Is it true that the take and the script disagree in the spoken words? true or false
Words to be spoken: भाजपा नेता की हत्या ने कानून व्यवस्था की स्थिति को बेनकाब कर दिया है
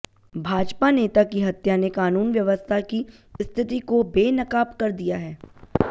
false